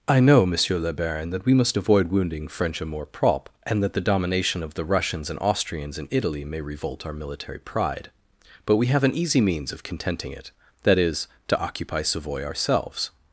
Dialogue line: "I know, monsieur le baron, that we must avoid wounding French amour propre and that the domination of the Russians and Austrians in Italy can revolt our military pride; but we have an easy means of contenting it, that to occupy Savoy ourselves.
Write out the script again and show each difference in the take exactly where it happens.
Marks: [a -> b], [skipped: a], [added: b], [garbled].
"I know, monsieur le baron, that we must avoid wounding French amour propre and that the domination of the Russians and Austrians in Italy [can -> may] revolt our military pride; but we have an easy means of contenting it, that [added: is] to occupy Savoy ourselves.